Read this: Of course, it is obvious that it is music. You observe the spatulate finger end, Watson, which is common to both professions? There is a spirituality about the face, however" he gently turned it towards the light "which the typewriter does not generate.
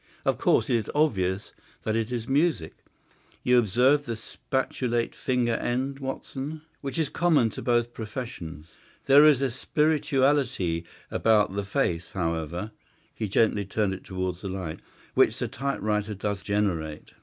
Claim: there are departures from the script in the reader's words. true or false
true